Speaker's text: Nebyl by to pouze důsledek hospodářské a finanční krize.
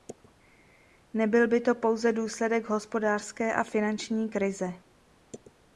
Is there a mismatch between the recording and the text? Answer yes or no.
no